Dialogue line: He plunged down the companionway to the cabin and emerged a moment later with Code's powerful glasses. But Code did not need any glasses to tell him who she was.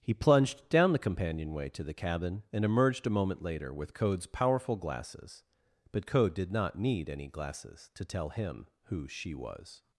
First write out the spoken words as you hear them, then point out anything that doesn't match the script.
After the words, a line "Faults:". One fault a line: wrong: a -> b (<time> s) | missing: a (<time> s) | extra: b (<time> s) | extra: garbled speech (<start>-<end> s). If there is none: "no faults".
He plunged down the companionway to the cabin and emerged a moment later with Code's powerful glasses. But Code did not need any glasses to tell him who she was.
Faults:
no faults